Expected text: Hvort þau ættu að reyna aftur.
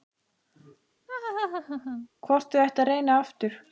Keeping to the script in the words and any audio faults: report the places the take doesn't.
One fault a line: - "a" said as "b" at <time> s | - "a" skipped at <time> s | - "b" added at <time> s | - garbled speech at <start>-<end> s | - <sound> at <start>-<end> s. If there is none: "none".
- laugh at 1.1-2.1 s